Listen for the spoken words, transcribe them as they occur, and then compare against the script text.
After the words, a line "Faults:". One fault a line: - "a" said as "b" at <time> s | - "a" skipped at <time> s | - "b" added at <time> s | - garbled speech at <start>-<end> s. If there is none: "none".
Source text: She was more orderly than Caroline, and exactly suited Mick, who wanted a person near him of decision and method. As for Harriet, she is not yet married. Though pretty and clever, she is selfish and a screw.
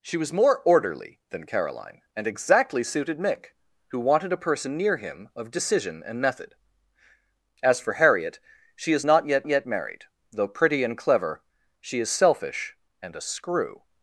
She was more orderly than Caroline, and exactly suited Mick, who wanted a person near him of decision and method. As for Harriet, she is not yet yet married. Though pretty and clever, she is selfish and a screw.
Faults:
- "yet" added at 9.5 s